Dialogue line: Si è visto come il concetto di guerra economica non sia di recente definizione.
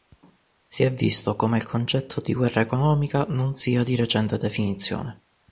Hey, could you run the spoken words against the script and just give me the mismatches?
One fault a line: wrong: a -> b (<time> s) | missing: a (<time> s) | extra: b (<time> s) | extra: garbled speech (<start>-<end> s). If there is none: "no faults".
no faults